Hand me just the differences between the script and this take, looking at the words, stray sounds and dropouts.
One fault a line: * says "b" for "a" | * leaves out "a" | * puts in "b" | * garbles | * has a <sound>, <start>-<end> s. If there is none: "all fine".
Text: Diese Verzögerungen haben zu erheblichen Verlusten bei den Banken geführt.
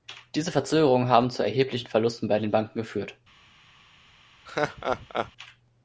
* has a laugh, 4.5-5.3 s